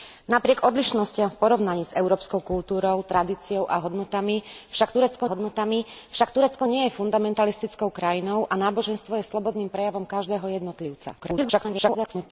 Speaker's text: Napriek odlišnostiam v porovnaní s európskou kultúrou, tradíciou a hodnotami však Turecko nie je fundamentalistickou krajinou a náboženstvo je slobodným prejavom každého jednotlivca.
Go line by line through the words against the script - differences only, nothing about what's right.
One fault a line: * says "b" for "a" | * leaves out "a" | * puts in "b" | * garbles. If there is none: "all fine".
* puts in "hodnotami však Turecko"
* garbles